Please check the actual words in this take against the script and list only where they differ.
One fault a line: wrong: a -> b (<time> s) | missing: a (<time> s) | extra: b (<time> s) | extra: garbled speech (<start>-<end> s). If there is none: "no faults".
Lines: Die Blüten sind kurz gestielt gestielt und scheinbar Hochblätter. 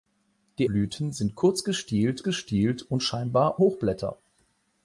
no faults